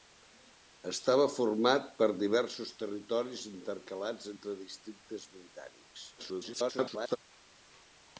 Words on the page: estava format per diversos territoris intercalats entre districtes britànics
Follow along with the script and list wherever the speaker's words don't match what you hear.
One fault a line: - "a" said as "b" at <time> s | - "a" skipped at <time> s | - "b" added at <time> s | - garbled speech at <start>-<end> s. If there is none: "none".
- garbled speech at 6.2-7.2 s